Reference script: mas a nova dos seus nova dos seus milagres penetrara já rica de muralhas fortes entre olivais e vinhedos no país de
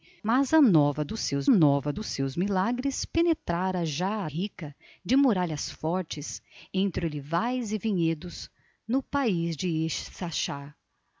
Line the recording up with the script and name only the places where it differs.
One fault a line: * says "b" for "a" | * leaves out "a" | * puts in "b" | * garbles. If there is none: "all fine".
all fine